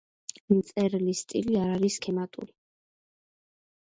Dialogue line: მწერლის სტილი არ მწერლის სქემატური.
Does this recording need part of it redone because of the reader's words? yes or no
yes